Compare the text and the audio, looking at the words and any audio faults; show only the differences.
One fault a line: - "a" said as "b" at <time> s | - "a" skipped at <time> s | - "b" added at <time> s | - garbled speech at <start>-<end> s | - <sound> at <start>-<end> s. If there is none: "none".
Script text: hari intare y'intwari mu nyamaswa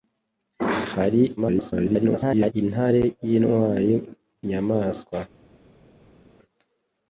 - garbled speech at 1.4-2.5 s
- "mu" skipped at 3.9 s